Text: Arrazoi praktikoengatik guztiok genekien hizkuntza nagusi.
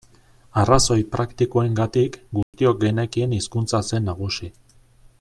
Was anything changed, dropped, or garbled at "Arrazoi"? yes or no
no